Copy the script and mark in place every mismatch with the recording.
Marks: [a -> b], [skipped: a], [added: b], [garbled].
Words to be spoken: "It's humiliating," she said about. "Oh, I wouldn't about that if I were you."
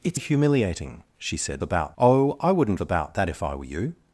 "It's humiliating," she said about. "Oh, I wouldn't about that if I were you."